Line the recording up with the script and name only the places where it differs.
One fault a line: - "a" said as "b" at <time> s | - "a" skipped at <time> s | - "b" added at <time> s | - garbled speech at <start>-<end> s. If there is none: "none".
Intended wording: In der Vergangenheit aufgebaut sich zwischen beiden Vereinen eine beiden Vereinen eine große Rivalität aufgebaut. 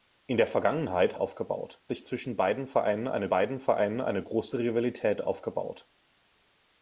none